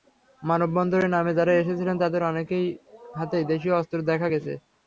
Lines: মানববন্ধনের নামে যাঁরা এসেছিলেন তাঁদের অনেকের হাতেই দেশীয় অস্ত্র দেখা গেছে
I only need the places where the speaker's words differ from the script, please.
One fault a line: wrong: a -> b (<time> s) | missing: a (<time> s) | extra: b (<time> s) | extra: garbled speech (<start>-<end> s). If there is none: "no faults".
no faults